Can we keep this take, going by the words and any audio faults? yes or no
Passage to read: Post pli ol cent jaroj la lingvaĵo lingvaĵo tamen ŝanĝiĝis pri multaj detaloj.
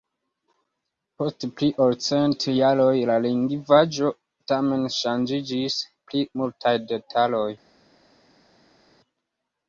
no